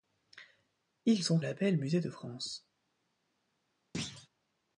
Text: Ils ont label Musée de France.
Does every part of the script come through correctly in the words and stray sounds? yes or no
no